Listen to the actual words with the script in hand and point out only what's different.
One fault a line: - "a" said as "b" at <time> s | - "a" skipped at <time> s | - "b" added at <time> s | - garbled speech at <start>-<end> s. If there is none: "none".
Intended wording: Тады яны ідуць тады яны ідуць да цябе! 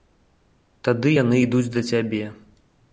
- "тады яны ідуць" skipped at 1.7 s